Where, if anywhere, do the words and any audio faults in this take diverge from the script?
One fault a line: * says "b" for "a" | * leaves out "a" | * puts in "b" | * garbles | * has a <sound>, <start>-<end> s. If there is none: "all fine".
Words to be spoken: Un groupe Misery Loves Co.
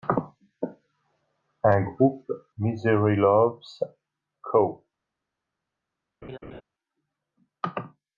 * has a laugh, 6.2-6.6 s